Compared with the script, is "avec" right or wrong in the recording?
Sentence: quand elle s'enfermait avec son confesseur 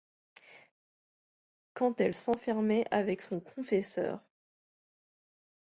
right